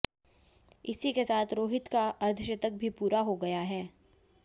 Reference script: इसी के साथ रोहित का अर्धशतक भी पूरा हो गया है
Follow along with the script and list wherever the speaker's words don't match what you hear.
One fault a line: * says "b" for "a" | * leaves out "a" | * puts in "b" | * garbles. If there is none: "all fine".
all fine